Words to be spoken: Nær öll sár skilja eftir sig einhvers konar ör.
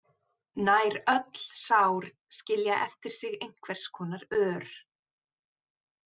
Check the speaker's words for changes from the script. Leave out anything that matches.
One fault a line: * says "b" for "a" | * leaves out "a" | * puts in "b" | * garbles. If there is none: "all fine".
all fine